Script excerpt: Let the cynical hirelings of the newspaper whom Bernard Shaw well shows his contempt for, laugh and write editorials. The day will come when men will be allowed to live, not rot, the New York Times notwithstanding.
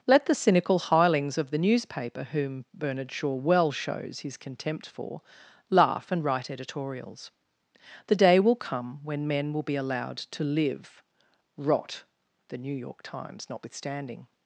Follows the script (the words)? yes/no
no